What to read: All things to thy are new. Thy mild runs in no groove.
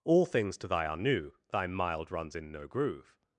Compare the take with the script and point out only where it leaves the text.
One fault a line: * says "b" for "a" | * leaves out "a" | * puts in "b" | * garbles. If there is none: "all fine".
all fine